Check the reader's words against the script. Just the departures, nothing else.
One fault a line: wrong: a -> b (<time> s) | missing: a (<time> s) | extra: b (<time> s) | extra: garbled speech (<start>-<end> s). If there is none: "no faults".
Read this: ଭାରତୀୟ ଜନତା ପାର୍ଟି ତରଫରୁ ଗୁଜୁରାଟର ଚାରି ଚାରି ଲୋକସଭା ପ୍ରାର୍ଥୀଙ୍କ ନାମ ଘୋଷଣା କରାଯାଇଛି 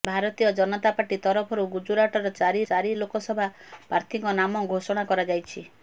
no faults